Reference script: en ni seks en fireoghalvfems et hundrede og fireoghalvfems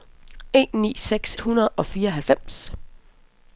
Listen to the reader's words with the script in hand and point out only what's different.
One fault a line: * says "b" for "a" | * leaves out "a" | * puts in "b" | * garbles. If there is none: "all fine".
* leaves out "en fireoghalvfems et"